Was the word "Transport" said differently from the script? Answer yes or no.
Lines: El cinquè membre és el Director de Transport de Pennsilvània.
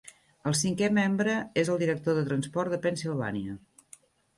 no